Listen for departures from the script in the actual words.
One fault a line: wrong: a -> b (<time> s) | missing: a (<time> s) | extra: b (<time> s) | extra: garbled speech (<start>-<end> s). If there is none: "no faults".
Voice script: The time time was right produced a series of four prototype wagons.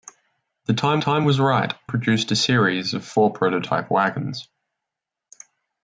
no faults